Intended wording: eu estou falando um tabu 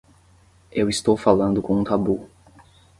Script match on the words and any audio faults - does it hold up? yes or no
no